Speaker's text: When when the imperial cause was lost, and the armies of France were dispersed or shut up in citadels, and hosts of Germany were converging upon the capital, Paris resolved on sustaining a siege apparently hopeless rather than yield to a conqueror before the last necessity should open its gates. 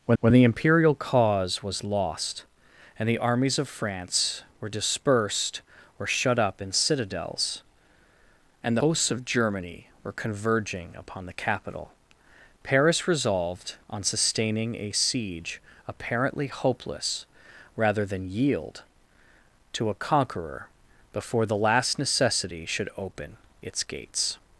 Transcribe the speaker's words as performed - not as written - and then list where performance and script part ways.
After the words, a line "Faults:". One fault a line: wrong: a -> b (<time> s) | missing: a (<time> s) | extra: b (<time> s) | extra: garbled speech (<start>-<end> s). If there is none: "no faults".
When when the imperial cause was lost, and the armies of France were dispersed or shut up in citadels, and hosts of Germany were converging upon the capital, Paris resolved on sustaining a siege apparently hopeless rather than yield to a conqueror before the last necessity should open its gates.
Faults:
no faults